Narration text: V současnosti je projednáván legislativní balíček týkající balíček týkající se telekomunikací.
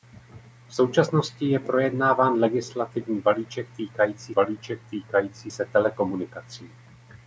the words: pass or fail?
pass